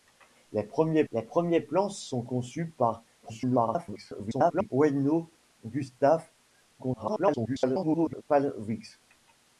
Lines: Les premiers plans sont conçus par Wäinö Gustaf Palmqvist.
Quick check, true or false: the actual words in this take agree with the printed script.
false